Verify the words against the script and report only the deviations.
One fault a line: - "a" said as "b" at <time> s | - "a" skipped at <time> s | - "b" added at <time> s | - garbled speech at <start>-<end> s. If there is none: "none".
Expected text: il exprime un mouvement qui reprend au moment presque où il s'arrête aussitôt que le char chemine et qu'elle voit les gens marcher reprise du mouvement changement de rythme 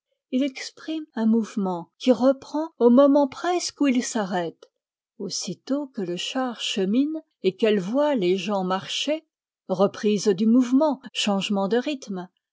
none